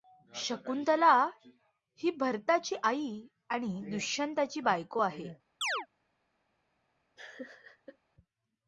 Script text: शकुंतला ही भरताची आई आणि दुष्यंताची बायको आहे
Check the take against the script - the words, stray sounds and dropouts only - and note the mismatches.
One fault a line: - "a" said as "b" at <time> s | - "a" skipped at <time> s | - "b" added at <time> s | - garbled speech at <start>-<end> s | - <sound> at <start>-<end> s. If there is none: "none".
- chirp at 5.6-5.9 s
- laugh at 7.2-8.0 s